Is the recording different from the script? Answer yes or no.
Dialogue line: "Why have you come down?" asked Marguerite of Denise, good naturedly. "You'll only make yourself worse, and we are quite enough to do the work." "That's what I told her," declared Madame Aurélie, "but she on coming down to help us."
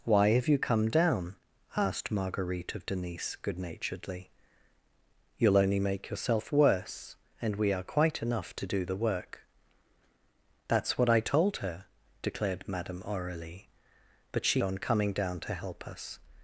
no